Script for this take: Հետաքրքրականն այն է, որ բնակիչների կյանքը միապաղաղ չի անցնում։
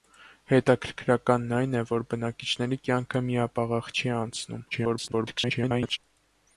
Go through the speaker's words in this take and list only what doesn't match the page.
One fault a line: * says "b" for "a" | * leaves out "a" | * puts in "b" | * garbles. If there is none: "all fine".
* garbles